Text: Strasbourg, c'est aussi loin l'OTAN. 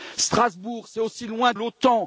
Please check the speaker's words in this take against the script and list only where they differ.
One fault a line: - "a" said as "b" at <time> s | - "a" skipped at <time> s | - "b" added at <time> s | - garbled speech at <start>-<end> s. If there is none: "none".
none